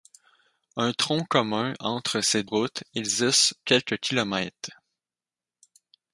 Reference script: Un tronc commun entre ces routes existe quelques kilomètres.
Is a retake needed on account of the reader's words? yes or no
no